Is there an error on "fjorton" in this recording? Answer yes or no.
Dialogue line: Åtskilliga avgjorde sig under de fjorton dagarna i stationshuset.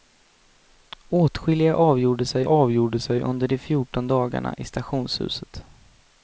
no